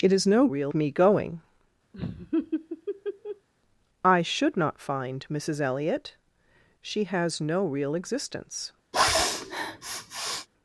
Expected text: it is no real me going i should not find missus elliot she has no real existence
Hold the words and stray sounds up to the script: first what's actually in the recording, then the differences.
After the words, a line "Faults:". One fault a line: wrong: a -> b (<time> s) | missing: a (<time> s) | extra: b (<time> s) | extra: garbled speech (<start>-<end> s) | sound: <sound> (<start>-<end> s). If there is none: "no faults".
it is no real me going i should not find missus elliot she has no real existence
Faults:
sound: laugh (1.9-3.5 s)
sound: sniff (8.9-10.5 s)